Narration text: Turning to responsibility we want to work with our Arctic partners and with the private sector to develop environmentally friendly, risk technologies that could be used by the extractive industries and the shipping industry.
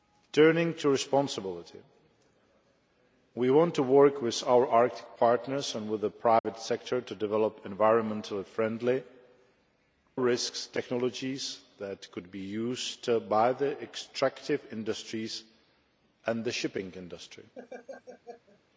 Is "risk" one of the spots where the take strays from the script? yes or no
no